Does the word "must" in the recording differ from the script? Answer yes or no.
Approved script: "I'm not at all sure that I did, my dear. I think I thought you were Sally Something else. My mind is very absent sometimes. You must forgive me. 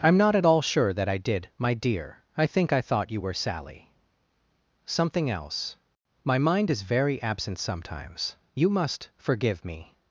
no